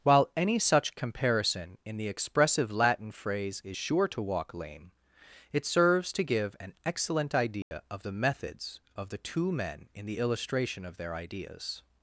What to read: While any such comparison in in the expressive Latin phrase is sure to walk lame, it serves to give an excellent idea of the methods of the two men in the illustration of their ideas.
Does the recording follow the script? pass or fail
fail